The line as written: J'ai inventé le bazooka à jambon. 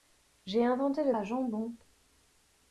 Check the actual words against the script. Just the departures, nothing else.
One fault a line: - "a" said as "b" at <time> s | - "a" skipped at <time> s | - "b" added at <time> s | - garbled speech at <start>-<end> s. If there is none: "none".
- "bazooka" skipped at 1.1 s